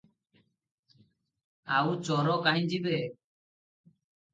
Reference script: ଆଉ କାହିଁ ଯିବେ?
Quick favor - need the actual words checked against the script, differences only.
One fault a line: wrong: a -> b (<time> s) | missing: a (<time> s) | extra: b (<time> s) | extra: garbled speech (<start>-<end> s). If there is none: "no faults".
extra: ଚୋର (2.0 s)